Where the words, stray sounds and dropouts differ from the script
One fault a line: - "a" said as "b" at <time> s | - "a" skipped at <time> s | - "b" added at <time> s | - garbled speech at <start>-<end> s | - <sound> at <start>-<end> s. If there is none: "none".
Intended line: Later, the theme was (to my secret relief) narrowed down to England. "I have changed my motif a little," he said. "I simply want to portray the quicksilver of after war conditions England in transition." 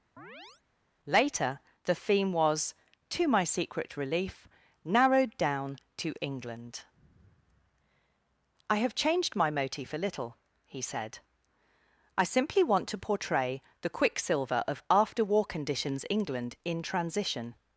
- chirp at 0.2-0.6 s